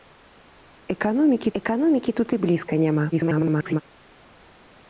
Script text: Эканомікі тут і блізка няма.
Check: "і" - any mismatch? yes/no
no